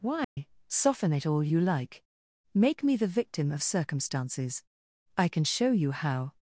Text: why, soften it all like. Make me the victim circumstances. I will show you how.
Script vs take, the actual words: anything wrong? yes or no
yes